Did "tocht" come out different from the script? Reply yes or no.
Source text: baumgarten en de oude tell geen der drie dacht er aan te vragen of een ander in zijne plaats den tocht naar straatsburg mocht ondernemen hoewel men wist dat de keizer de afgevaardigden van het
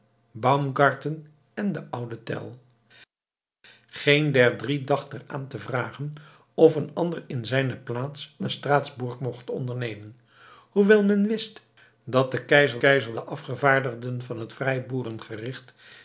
yes